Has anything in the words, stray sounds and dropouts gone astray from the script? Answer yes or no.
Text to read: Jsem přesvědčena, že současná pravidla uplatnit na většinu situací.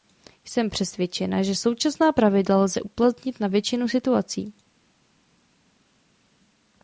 yes